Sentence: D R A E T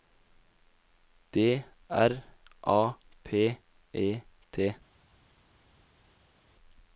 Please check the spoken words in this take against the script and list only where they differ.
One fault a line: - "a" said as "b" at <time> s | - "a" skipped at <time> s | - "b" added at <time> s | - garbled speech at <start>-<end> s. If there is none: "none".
- "P" added at 3.2 s